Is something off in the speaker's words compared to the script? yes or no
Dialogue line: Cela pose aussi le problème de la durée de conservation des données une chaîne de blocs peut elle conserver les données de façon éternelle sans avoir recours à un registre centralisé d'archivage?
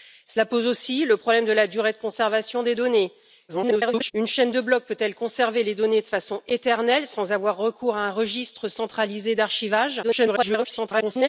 yes